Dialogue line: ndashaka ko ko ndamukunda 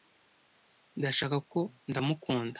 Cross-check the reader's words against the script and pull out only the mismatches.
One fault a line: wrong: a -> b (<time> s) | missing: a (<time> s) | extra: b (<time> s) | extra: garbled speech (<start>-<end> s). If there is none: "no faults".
no faults